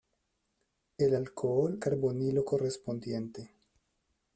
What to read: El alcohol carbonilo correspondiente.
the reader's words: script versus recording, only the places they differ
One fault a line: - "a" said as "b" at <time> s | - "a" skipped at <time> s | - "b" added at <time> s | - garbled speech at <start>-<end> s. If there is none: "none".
none